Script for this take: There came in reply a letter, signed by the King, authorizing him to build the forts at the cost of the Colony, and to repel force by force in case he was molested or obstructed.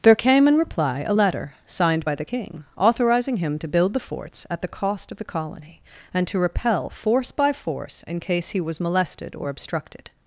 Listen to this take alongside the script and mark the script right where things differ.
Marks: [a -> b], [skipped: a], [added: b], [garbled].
There came in reply a letter, signed by the King, authorizing him to build the forts at the cost of the Colony, and to repel force by force in case he was molested or obstructed.